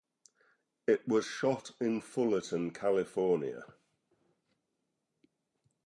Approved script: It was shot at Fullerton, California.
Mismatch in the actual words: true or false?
true